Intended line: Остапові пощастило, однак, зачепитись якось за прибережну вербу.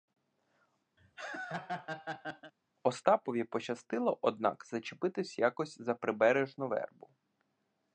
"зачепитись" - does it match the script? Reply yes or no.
yes